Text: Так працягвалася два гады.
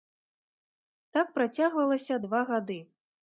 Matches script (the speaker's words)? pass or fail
pass